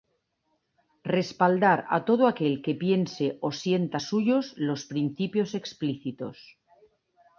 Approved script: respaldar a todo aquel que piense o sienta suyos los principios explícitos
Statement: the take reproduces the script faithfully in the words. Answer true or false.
true